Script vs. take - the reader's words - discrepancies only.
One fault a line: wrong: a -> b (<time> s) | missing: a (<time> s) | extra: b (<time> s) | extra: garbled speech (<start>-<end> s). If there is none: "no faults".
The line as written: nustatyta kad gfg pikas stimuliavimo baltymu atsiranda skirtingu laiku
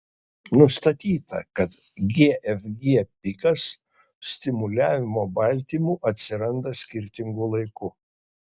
no faults